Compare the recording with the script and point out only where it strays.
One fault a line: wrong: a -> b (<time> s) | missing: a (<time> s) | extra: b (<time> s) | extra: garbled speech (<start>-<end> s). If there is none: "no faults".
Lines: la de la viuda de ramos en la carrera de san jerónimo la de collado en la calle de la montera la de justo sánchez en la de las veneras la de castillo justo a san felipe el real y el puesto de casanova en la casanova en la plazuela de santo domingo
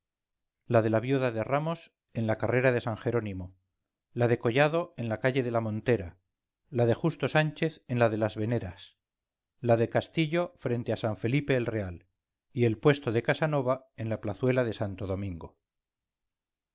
wrong: justo -> frente (10.6 s)
missing: casanova en la (14.2 s)